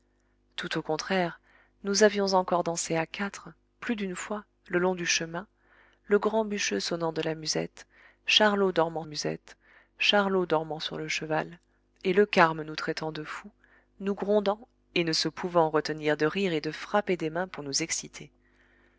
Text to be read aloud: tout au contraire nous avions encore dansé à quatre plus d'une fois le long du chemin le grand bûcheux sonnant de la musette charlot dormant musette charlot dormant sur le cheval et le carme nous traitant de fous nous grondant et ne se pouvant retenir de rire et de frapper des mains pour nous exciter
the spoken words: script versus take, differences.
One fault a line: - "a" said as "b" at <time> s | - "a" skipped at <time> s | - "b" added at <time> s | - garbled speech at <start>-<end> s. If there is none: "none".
none